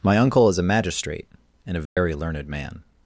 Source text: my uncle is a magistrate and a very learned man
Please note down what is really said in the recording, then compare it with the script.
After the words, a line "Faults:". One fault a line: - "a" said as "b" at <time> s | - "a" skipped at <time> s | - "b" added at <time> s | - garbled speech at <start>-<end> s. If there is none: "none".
my uncle is a magistrate and a very learned man
Faults:
none